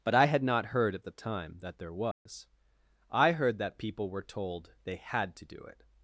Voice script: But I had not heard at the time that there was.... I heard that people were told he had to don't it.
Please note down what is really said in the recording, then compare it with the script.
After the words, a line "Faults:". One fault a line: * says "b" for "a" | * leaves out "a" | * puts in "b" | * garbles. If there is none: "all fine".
But I had not heard at the time that there was.... I heard that people were told they had to do it.
Faults:
* says "they" for "he"
* says "do" for "don't"